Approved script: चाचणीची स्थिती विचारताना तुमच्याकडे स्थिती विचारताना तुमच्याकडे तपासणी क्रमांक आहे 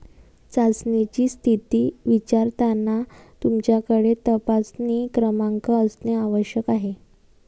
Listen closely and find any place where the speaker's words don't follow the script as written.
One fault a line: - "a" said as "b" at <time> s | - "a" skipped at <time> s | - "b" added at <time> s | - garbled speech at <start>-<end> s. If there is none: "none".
- "स्थिती विचारताना तुमच्याकडे तपासणी क्रमांक" said as "तपासणी क्रमांक असणे आवश्यक" at 4.3 s